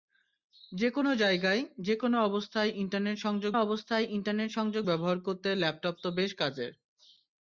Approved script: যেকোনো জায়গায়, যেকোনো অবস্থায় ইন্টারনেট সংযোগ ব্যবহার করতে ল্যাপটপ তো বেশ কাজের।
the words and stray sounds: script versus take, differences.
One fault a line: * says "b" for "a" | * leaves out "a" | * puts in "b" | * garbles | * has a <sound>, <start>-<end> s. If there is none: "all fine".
* puts in "অবস্থায় ইন্টারনেট সংযোগ"